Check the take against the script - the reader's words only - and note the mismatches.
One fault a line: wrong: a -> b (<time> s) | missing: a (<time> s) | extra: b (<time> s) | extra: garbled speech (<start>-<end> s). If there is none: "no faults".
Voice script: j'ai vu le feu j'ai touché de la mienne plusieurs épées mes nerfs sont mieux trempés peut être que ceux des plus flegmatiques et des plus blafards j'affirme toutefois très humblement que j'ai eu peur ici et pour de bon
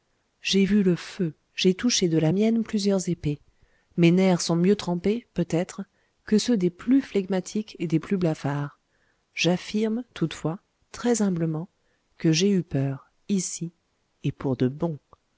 no faults